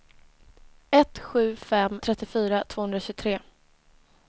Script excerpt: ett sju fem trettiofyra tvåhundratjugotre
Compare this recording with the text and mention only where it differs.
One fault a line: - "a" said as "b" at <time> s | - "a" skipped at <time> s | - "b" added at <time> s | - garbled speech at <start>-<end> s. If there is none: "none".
none